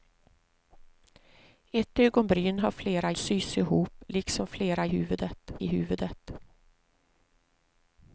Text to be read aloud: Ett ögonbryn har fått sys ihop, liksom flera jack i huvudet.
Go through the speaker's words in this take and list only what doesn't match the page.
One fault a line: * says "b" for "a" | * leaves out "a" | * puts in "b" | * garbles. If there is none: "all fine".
* says "flera" for "fått"
* says "huvudet" for "jack"